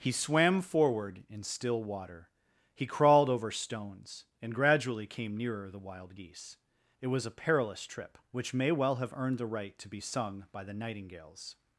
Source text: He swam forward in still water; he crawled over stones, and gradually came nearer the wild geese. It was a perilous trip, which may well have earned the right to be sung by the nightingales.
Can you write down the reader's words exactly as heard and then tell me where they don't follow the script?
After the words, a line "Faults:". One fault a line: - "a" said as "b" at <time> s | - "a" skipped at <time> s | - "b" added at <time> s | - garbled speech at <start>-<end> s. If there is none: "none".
He swam forward in still water; he crawled over stones, and gradually came nearer the wild geese. It was a perilous trip, which may well have earned the right to be sung by the nightingales.
Faults:
none